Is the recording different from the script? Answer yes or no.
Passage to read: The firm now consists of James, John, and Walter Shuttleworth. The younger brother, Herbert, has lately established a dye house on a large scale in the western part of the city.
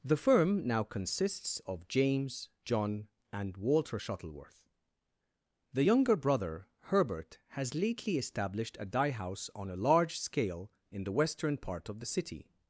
no